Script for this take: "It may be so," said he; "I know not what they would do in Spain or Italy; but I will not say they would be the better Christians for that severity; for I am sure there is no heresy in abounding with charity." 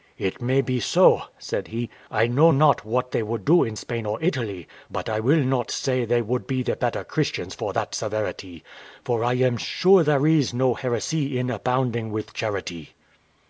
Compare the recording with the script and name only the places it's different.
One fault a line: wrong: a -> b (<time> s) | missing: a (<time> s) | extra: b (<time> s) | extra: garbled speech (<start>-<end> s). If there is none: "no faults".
no faults